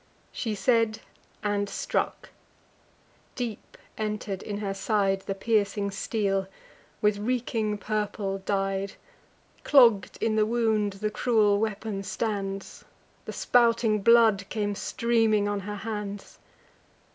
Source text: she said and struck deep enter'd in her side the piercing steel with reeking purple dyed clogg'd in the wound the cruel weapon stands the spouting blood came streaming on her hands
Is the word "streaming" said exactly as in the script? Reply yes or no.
yes